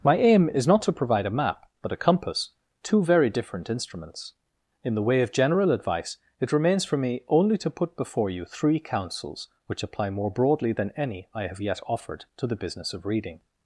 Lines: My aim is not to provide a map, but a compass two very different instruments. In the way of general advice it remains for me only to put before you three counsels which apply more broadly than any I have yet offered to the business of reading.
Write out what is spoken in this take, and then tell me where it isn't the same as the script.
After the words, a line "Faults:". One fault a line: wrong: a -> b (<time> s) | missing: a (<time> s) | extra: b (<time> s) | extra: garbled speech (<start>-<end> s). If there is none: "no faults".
My aim is not to provide a map, but a compass two very different instruments. In the way of general advice it remains for me only to put before you three counsels which apply more broadly than any I have yet offered to the business of reading.
Faults:
no faults